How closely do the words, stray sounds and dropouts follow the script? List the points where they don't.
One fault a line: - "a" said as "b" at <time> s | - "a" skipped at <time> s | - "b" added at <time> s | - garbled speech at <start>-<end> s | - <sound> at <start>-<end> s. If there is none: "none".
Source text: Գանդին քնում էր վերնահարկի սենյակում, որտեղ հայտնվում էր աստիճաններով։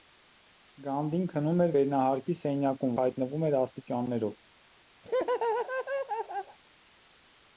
- "որտեղ" skipped at 3.0 s
- laugh at 5.0-6.6 s